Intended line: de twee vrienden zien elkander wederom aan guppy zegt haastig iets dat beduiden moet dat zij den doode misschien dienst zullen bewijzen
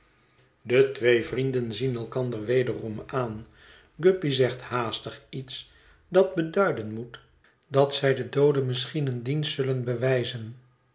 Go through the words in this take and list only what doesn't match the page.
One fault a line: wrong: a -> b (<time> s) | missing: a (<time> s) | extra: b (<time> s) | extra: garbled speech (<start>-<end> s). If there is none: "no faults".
extra: een (9.1 s)